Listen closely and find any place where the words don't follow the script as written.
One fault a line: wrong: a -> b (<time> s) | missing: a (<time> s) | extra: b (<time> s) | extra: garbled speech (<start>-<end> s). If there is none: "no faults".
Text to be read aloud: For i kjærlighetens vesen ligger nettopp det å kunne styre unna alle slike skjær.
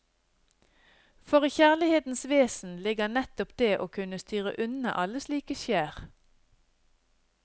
no faults